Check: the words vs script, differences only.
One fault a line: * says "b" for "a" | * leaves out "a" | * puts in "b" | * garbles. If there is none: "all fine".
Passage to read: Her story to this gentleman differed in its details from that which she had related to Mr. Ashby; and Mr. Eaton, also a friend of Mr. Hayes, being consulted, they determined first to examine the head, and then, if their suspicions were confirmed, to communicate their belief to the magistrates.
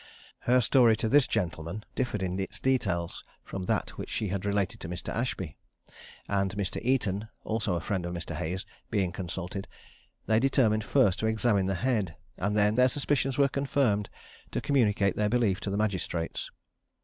* leaves out "if"